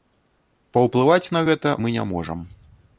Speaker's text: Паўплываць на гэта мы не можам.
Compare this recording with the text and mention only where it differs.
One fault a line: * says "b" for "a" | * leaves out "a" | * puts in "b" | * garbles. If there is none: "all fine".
all fine